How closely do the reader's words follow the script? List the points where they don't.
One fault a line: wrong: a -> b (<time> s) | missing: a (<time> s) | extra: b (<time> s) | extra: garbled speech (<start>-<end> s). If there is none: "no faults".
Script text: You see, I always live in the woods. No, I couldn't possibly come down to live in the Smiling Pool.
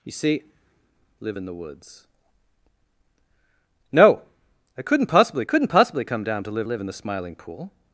missing: I always (0.4 s)
extra: couldn't possibly (5.4 s)
extra: live (6.6 s)